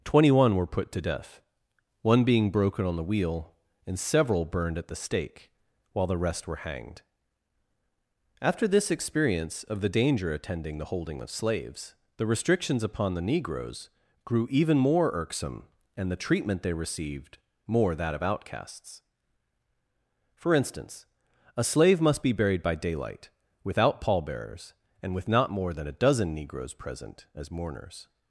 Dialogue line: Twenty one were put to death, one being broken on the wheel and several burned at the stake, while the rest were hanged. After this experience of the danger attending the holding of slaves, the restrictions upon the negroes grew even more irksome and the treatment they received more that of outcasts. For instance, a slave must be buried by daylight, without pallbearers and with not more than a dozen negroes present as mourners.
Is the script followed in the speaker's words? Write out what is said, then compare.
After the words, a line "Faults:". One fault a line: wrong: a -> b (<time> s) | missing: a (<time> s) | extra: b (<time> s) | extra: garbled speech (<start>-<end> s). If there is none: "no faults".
Twenty one were put to death, one being broken on the wheel and several burned at the stake, while the rest were hanged. After this experience of the danger attending the holding of slaves, the restrictions upon the negroes grew even more irksome and the treatment they received more that of outcasts. For instance, a slave must be buried by daylight, without pallbearers and with not more than a dozen negroes present as mourners.
Faults:
no faults